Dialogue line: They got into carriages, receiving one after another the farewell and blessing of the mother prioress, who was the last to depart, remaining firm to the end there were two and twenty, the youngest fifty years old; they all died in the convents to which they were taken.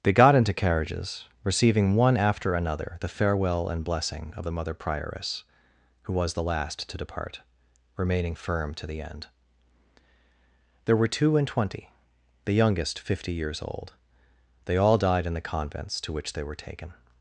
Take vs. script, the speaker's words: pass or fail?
pass